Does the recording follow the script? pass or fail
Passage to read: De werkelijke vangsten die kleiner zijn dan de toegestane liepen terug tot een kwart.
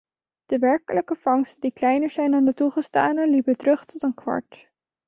pass